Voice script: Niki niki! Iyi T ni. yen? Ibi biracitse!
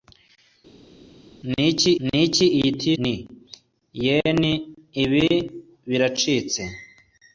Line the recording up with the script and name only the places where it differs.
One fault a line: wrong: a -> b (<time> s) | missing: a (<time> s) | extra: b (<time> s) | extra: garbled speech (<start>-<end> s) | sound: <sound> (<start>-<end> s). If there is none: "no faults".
no faults